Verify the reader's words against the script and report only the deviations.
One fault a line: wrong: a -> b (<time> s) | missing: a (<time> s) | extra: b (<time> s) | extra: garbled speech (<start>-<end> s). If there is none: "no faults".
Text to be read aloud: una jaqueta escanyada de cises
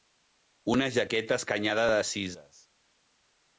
no faults